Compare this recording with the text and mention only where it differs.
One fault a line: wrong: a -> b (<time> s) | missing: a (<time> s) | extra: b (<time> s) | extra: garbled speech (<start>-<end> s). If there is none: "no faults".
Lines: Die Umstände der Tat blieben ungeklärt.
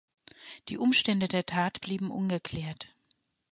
no faults